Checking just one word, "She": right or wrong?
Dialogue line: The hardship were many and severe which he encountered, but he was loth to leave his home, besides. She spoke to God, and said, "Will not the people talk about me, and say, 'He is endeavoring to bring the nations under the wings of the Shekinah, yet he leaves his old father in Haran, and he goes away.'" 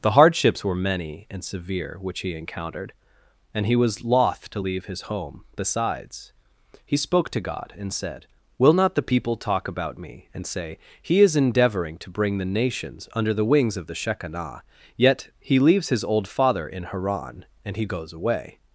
wrong